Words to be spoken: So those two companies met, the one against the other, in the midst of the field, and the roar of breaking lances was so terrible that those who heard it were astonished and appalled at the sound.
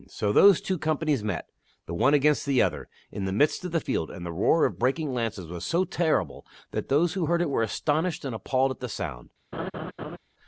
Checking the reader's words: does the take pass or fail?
pass